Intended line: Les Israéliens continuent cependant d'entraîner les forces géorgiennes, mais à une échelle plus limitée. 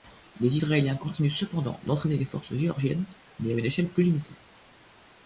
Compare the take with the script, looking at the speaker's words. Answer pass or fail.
pass